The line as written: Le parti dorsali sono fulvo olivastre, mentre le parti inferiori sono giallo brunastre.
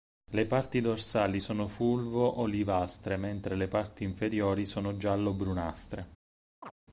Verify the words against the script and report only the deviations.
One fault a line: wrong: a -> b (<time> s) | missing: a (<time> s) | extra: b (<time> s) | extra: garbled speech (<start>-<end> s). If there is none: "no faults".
no faults